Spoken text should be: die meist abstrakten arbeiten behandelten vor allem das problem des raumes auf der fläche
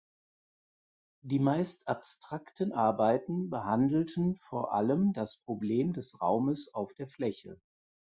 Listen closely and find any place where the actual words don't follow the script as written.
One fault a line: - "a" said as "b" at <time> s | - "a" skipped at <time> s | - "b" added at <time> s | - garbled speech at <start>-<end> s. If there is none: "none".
none